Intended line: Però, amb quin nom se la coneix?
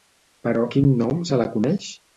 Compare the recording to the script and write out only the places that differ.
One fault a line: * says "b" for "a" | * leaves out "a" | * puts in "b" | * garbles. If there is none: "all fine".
* leaves out "amb"